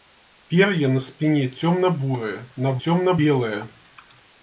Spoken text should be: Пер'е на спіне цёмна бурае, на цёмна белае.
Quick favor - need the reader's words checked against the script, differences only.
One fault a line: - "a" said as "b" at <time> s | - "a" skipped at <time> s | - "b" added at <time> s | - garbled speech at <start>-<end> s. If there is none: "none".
none